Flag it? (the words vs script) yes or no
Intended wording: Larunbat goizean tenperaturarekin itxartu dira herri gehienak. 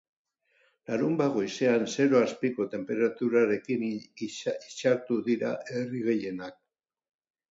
yes